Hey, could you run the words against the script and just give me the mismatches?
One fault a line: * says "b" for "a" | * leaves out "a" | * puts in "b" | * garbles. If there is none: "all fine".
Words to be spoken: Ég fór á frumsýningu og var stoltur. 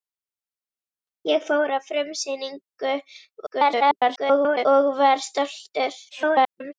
* garbles
* garbles